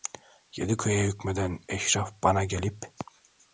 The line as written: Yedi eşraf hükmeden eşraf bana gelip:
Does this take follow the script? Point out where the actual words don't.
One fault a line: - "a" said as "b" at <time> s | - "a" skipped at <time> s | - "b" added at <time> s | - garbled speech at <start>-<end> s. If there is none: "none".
- "eşraf" said as "köye" at 0.8 s